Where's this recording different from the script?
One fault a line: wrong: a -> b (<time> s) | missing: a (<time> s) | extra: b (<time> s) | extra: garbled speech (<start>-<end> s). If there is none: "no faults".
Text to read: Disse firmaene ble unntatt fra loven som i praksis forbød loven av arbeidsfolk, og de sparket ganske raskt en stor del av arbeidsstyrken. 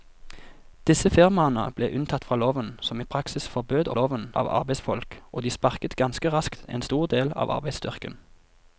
no faults